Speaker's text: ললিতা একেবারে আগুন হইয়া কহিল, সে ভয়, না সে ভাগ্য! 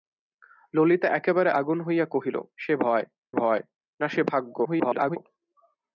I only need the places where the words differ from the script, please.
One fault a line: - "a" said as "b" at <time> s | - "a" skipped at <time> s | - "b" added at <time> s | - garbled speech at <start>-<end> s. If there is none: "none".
- "ভয়" added at 3.3 s
- garbled speech at 4.6-5.2 s